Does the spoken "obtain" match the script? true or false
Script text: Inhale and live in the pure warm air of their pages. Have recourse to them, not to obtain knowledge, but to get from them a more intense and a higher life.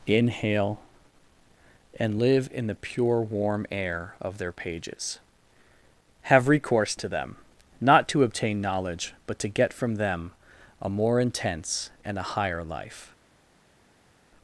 true